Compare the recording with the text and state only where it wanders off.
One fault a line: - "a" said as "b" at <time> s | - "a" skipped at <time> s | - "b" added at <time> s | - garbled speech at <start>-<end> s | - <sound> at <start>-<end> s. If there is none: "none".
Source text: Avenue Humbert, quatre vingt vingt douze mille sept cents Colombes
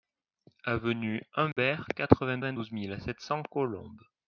- dropout at 1.5-1.6 s